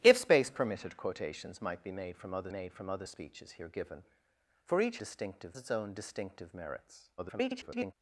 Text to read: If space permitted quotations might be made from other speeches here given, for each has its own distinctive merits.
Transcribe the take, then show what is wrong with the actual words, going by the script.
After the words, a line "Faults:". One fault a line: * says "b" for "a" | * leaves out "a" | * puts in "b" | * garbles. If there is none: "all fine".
If space permitted quotations might be made from other made from other speeches here given, for each distinctive its own distinctive merits. [garbled]
Faults:
* puts in "made from other"
* says "distinctive" for "has"
* garbles